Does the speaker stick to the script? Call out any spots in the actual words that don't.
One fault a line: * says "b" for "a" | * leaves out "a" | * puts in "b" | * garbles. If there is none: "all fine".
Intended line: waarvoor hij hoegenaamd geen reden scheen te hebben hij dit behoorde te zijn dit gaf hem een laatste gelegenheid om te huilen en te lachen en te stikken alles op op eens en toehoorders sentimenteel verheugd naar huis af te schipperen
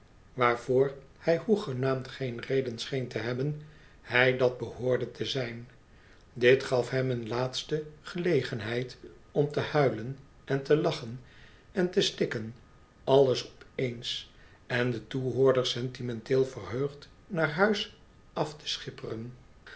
* says "dat" for "dit"
* leaves out "op"
* puts in "de"